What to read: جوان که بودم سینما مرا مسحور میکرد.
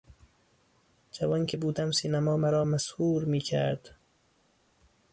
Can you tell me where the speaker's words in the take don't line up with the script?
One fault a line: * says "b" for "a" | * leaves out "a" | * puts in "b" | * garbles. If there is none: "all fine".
all fine